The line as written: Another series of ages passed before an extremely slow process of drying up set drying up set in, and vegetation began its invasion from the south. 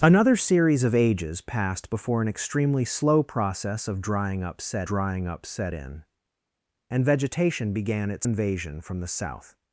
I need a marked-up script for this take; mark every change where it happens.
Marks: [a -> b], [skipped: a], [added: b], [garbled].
Another series of ages passed before an extremely slow process of drying up set drying up set in, and vegetation began its invasion from the south.